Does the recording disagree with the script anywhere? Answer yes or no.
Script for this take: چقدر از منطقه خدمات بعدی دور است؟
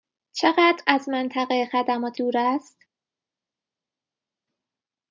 yes